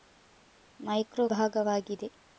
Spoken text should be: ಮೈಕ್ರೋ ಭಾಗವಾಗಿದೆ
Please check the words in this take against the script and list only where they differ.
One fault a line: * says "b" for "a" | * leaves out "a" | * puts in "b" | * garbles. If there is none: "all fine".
all fine